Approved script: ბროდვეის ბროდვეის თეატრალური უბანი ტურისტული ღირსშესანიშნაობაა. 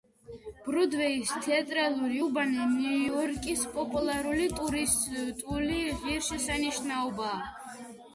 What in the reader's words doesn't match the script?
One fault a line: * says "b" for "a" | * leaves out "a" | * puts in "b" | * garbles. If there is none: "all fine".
* leaves out "ბროდვეის"
* puts in "ნიუ იორკის პოპულარული"